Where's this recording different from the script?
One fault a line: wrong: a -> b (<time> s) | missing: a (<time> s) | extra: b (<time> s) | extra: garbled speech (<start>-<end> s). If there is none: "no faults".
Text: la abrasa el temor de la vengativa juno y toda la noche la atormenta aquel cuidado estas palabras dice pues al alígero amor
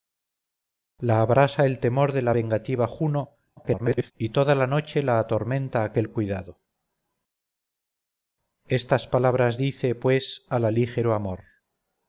extra: garbled speech (3.6-4.1 s)